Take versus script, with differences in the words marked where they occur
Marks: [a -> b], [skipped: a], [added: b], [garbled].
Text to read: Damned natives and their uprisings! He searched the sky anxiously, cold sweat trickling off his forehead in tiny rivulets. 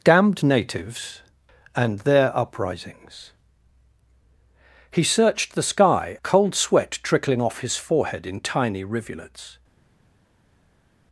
Damned natives and their uprisings! He searched the sky [skipped: anxiously,] cold sweat trickling off his forehead in tiny rivulets.